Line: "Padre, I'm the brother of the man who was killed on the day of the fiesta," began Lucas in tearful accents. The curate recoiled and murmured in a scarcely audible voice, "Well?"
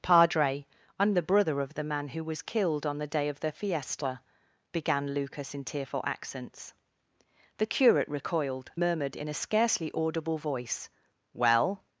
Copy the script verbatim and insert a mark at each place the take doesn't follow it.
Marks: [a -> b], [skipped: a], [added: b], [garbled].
"Padre, I'm the brother of the man who was killed on the day of the fiesta," began Lucas in tearful accents. The curate recoiled [skipped: and] murmured in a scarcely audible voice, "Well?"